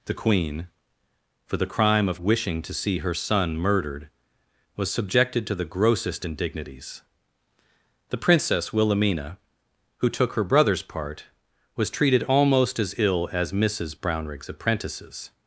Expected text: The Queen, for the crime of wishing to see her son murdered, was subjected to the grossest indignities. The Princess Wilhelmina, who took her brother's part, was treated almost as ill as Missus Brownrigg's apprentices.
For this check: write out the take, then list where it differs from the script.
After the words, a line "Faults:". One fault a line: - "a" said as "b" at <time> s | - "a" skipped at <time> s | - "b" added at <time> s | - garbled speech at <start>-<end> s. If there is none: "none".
The Queen, for the crime of wishing to see her son murdered, was subjected to the grossest indignities. The Princess Wilhelmina, who took her brother's part, was treated almost as ill as Missus Brownrigg's apprentices.
Faults:
none